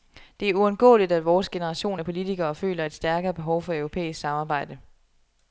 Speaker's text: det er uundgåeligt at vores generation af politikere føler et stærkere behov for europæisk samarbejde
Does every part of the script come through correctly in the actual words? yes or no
yes